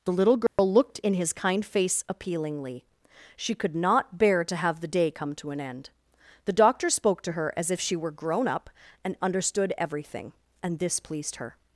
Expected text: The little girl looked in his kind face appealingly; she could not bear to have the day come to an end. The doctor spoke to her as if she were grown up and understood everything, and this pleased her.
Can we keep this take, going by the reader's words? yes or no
yes